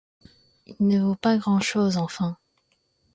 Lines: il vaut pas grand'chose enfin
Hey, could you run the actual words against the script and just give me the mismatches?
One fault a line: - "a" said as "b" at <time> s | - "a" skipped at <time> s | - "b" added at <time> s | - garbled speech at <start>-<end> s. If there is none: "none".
- "ne" added at 0.9 s